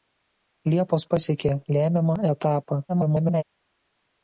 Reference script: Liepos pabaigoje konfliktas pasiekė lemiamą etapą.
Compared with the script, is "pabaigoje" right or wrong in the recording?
wrong